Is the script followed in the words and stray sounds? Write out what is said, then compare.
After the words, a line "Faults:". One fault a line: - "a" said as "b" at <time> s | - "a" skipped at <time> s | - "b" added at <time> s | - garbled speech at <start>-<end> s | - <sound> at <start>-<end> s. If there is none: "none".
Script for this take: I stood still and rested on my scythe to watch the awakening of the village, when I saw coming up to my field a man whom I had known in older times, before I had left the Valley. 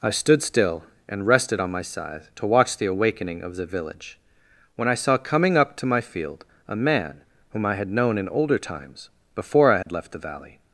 I stood still and rested on my scythe to watch the awakening of the village, when I saw coming up to my field a man whom I had known in older times, before I had left the Valley.
Faults:
- dropout at 9.8-9.9 s